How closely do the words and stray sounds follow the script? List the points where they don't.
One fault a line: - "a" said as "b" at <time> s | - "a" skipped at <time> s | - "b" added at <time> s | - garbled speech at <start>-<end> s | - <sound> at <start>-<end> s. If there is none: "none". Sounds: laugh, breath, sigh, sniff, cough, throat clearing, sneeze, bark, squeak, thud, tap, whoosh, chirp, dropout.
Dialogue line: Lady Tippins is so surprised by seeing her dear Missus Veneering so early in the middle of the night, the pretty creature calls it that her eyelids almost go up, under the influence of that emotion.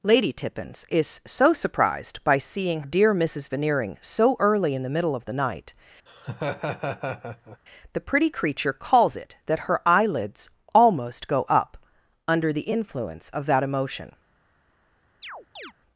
- "her" skipped at 2.8 s
- laugh at 6.1-7.6 s
- chirp at 15.2-15.7 s